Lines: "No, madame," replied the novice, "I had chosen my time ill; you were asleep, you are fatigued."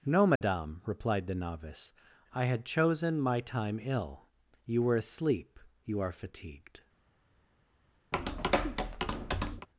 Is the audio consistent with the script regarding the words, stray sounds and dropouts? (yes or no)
no